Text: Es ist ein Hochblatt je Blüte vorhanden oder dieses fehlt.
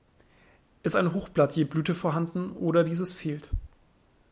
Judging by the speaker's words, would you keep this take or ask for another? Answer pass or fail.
fail